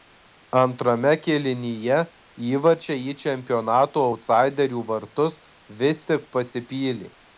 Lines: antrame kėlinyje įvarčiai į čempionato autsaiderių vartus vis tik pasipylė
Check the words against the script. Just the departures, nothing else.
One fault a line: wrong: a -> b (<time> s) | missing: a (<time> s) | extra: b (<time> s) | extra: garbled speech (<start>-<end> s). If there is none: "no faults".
no faults